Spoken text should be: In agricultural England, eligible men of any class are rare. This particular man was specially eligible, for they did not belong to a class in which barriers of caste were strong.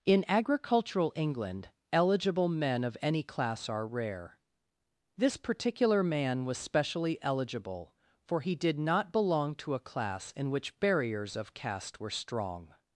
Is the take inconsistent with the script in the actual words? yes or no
yes